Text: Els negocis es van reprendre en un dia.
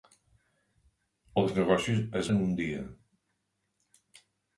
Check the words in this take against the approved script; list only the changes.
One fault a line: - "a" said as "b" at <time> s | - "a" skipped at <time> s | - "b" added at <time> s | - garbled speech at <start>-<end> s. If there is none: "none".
- "van reprendre" skipped at 2.3 s